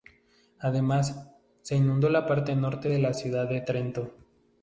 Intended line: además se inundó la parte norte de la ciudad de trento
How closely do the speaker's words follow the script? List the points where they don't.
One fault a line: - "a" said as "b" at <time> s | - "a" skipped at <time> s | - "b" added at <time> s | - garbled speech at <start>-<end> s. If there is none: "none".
none